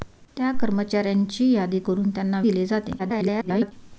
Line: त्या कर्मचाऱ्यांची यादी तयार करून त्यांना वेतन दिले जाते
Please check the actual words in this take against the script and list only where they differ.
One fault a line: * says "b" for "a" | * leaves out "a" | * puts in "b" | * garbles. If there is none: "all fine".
* leaves out "तयार"
* leaves out "वेतन"
* garbles